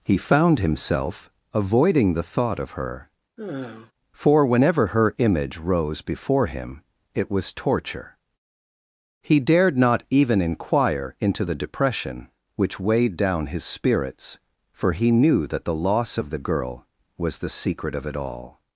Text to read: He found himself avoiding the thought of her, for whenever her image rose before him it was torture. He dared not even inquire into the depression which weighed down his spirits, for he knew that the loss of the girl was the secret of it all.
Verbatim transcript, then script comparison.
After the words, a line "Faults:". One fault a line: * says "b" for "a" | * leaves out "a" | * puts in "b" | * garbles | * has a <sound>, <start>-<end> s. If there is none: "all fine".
He found himself avoiding the thought of her, for whenever her image rose before him it was torture. He dared not even inquire into the depression which weighed down his spirits, for he knew that the loss of the girl was the secret of it all.
Faults:
* has a sigh, 3.4-3.9 s